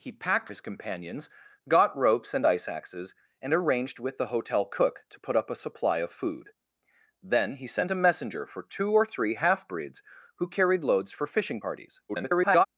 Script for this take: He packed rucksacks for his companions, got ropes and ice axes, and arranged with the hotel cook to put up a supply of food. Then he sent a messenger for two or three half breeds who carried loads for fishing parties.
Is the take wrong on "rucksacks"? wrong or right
wrong